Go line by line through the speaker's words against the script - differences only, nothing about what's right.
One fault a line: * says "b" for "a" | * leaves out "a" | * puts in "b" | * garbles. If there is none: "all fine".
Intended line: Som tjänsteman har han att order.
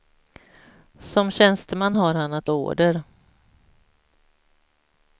all fine